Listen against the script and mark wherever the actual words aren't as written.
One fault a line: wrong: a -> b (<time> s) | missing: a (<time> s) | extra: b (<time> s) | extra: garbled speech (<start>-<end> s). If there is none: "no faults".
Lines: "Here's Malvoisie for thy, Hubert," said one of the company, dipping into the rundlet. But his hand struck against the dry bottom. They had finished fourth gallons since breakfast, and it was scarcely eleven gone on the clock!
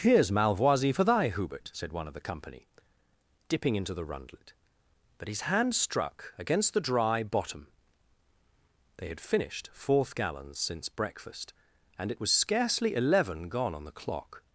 no faults